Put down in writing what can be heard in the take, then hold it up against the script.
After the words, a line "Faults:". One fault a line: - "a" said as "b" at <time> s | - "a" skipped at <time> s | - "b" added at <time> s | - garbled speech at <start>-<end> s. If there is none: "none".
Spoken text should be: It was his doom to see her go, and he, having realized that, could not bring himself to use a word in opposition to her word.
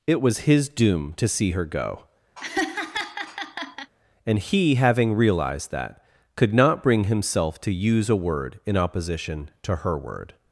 It was his doom to see her go, and he, having realized that, could not bring himself to use a word in opposition to her word.
Faults:
none